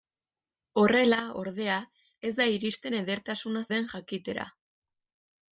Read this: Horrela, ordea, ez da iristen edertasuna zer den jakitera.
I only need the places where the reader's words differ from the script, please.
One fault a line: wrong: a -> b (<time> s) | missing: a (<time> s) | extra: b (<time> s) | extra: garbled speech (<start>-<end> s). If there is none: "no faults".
missing: zer (3.6 s)